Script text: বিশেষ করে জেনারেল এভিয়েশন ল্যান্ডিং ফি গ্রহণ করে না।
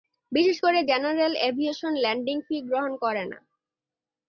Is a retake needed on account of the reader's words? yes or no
no